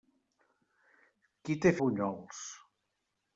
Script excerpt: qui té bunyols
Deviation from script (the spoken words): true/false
false